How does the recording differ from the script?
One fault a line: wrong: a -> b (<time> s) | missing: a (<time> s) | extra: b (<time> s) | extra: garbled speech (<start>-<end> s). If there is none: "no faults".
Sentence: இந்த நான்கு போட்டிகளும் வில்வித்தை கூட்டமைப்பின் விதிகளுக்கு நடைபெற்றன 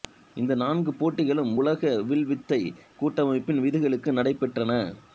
extra: உலக (1.5 s)